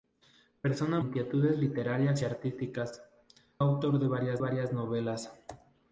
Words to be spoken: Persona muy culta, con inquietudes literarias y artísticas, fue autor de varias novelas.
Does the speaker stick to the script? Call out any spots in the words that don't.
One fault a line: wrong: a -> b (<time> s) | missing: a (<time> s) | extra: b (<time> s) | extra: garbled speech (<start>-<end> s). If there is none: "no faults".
missing: muy culta con (1.0 s)
missing: fue (3.1 s)
extra: varias (4.4 s)